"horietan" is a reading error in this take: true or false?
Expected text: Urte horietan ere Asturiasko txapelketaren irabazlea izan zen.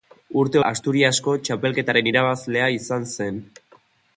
true